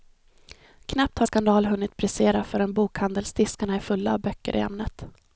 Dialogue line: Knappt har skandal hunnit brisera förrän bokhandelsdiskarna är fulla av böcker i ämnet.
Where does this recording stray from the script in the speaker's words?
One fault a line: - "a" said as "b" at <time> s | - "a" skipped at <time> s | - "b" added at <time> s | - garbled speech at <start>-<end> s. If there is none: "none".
none